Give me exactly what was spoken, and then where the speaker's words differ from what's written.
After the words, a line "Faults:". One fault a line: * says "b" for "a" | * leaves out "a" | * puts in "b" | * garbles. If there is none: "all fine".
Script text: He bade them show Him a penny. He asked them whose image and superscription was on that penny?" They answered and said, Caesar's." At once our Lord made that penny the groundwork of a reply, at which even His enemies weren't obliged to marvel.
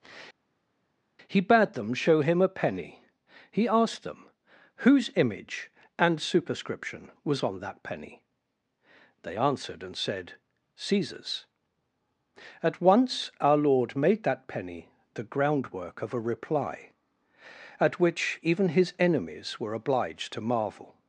He bade them show Him a penny. He asked them whose image and superscription was on that penny?" They answered and said, Caesar's." At once our Lord made that penny the groundwork of a reply, at which even His enemies were obliged to marvel.
Faults:
* says "were" for "weren't"